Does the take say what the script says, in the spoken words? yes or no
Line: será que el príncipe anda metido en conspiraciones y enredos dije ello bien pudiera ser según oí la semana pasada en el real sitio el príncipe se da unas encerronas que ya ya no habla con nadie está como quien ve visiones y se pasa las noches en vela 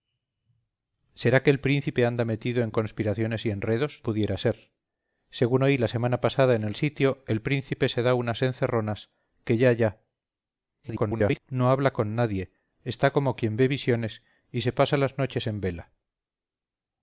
no